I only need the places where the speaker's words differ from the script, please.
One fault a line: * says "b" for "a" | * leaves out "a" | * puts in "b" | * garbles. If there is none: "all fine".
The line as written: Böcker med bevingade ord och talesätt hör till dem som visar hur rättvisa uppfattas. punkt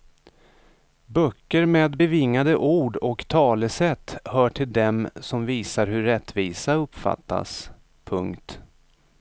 all fine